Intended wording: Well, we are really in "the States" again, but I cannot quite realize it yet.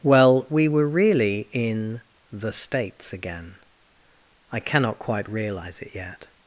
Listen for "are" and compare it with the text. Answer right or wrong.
wrong